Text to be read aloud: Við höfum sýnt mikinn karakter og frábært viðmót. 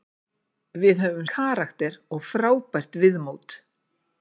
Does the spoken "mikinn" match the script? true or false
false